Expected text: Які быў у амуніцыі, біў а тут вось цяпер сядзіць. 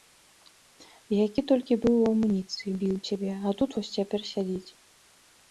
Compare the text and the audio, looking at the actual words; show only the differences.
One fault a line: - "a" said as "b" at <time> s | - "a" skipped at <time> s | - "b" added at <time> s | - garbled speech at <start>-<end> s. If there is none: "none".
- "толькі" added at 1.5 s
- "цябе" added at 3.1 s